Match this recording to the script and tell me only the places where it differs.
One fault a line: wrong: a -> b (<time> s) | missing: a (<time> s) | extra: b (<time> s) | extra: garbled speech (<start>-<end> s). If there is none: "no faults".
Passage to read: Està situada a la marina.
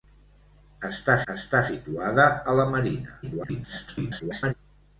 extra: està (1.3 s)
extra: garbled speech (3.2-4.5 s)